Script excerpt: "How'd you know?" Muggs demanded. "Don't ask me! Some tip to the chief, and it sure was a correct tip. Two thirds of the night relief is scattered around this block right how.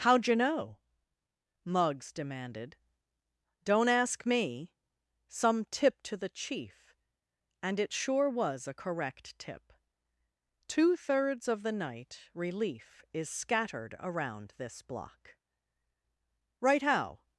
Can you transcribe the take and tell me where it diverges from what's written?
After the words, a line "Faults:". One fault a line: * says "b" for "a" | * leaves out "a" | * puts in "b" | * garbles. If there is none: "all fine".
"How'd you know?" Muggs demanded. "Don't ask me! Some tip to the chief, and it sure was a correct tip. Two thirds of the night relief is scattered around this block right how.
Faults:
all fine